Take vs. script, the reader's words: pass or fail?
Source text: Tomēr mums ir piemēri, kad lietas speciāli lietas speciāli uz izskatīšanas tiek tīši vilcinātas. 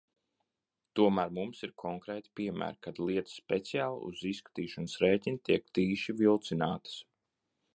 fail